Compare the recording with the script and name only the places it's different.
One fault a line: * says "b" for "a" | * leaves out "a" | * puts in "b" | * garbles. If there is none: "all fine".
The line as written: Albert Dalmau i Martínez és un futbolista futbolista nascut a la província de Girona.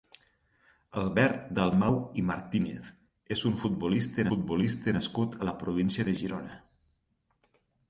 all fine